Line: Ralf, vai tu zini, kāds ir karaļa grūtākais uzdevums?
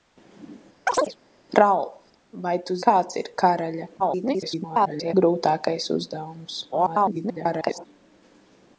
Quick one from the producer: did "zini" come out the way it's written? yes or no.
no